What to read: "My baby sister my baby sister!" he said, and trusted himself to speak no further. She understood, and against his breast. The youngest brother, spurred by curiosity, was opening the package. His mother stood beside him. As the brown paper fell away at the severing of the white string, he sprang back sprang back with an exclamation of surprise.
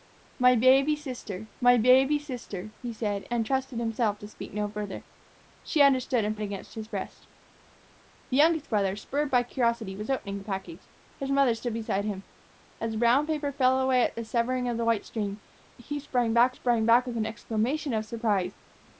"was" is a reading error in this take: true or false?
false